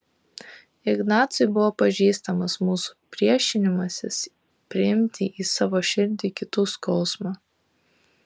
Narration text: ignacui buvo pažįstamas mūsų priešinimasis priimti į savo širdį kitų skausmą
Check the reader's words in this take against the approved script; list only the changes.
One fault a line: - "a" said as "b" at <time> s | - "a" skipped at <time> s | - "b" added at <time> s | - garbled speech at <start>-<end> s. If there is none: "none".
none